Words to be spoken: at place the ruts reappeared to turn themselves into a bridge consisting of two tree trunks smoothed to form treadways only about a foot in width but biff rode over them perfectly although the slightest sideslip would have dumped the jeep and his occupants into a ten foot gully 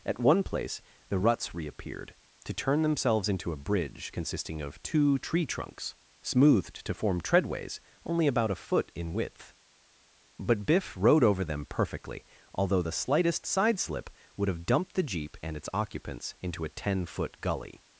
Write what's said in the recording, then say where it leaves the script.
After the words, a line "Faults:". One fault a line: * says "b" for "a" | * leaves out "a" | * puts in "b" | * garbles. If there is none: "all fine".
at one place the ruts reappeared to turn themselves into a bridge consisting of two tree trunks smoothed to form treadways only about a foot in width but biff rode over them perfectly although the slightest sideslip would have dumped the jeep and its occupants into a ten foot gully
Faults:
* puts in "one"
* says "its" for "his"